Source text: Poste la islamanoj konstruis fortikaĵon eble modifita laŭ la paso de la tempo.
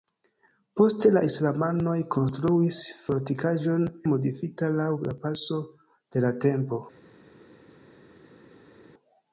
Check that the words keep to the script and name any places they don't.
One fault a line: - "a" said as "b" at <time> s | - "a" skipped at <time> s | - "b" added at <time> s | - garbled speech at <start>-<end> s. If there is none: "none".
- "eble" skipped at 3.9 s